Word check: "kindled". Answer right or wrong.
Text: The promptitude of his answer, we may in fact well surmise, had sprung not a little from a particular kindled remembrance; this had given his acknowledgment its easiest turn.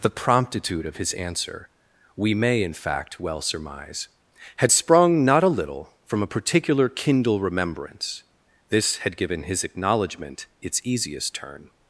wrong